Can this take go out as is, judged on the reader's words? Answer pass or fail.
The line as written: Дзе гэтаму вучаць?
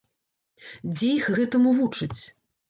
fail